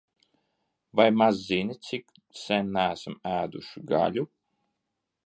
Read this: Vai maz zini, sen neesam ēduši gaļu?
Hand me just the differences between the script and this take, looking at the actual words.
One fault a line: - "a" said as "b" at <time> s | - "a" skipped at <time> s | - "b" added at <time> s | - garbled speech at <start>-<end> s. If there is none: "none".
- "cik" added at 1.9 s